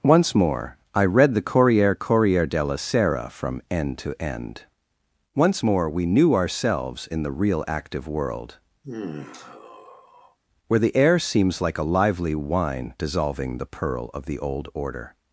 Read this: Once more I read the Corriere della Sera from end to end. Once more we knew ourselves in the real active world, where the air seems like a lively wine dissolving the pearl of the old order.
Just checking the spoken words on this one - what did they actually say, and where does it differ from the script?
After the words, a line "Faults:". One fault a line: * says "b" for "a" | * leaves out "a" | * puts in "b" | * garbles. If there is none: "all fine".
Once more I read the Corriere Corriere della Sera from end to end. Once more we knew ourselves in the real active world, where the air seems like a lively wine dissolving the pearl of the old order.
Faults:
* puts in "Corriere"